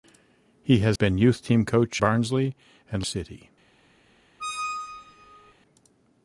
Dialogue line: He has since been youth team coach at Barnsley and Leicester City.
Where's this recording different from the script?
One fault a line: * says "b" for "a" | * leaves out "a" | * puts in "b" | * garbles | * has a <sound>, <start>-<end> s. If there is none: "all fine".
* leaves out "since"
* leaves out "at"
* leaves out "Leicester"
* has a squeak, 4.4-5.5 s